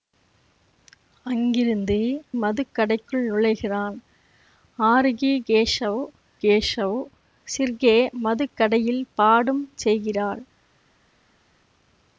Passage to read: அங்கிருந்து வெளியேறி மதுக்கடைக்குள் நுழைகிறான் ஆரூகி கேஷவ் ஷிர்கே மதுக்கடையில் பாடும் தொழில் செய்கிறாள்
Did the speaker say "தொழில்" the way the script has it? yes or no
no